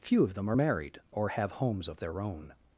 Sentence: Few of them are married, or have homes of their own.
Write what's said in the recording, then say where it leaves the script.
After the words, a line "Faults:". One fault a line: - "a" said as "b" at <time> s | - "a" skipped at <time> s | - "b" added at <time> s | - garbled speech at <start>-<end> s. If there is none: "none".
Few of them are married, or have homes of their own.
Faults:
none